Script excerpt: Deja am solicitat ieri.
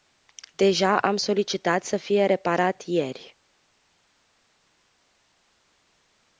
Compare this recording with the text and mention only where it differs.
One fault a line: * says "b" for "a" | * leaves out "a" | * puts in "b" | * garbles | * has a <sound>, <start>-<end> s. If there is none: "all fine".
* puts in "să fie reparat"